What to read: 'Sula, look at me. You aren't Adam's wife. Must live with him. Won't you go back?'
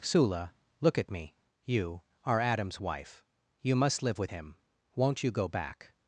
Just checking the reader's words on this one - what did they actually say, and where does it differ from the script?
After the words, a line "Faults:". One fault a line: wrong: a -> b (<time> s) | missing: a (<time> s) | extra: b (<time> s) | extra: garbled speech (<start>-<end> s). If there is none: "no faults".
'Sula, look at me. You are Adam's wife. You must live with him. Won't you go back?'
Faults:
wrong: aren't -> are (2.2 s)
extra: You (3.6 s)